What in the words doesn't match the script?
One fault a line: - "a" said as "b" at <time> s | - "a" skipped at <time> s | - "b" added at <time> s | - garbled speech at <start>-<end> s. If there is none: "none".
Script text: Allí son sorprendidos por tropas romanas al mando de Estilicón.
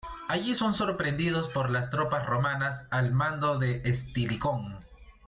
- "las" added at 1.7 s